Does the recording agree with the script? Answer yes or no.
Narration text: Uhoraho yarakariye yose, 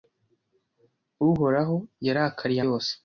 yes